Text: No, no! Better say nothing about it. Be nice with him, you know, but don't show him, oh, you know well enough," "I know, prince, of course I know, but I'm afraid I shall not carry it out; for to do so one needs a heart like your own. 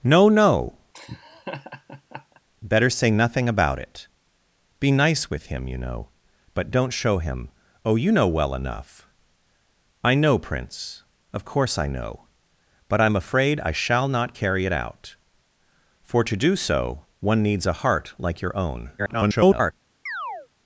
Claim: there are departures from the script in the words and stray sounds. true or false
true